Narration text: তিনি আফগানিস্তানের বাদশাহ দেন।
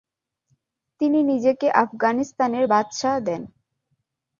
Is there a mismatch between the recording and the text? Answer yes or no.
yes